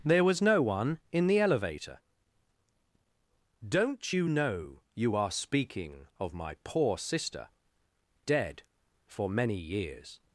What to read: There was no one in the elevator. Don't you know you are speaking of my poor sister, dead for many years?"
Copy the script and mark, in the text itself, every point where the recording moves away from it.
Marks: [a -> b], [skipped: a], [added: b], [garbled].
There was no one in the elevator. Don't you know you are speaking of my poor sister, dead for many years?"